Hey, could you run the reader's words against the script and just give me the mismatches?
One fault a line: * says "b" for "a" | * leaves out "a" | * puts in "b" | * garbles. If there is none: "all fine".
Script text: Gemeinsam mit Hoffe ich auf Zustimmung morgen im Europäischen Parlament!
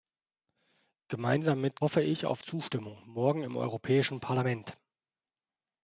all fine